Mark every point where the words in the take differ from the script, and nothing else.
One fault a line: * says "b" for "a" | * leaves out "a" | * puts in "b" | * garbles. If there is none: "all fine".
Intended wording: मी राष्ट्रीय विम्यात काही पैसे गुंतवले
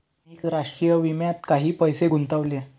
all fine